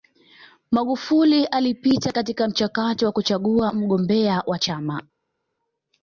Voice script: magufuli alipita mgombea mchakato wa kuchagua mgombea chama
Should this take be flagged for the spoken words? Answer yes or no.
yes